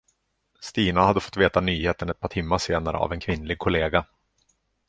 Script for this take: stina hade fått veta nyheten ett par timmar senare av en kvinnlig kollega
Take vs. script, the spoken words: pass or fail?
pass